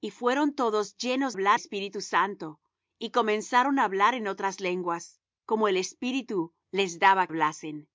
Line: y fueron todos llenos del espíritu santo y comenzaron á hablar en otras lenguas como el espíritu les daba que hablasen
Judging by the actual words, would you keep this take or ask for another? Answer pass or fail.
fail